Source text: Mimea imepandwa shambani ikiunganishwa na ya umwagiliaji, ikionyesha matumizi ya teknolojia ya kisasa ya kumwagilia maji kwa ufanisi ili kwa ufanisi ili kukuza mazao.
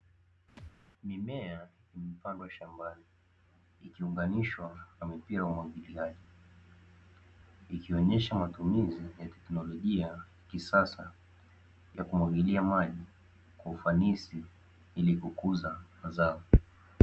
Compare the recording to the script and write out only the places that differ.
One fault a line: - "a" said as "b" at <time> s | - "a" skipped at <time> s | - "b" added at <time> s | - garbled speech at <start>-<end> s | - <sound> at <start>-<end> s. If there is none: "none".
- thud at 0.6-0.7 s
- "mipira" added at 5.1 s
- "kwa ufanisi ili" skipped at 15.2 s